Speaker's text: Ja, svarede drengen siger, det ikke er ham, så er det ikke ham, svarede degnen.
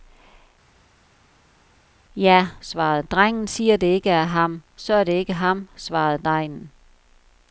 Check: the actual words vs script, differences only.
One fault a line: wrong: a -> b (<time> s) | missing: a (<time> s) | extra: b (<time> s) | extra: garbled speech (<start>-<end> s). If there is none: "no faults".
no faults